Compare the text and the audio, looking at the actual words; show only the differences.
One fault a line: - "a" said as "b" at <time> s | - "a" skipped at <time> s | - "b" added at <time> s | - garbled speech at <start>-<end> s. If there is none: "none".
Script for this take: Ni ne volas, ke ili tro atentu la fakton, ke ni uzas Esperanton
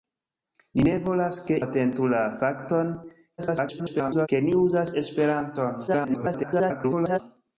- "ili tro" skipped at 1.6 s
- garbled speech at 3.4-4.3 s
- garbled speech at 5.9-7.2 s